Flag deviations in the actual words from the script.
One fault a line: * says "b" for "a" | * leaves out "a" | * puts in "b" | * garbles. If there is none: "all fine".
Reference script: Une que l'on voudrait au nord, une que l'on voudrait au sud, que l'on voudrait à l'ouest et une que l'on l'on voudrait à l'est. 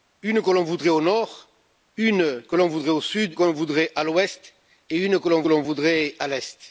all fine